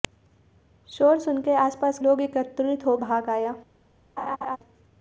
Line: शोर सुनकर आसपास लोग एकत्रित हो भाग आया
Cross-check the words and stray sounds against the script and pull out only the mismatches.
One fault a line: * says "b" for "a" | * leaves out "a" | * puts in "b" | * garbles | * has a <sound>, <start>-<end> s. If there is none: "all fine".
* has a laugh, 4.2-4.6 s